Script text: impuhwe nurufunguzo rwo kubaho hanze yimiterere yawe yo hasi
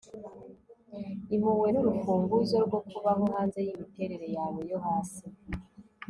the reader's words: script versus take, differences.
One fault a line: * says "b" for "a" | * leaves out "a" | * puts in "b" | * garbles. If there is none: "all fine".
all fine